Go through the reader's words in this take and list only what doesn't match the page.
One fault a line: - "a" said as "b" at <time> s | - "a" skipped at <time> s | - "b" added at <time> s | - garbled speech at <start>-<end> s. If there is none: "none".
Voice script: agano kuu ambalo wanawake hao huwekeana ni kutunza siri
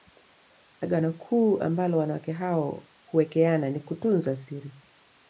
none